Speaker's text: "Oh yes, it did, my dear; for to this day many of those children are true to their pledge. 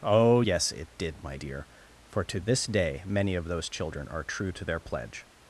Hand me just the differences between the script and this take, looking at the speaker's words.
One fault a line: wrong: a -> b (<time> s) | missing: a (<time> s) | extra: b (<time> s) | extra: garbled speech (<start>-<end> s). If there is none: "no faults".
no faults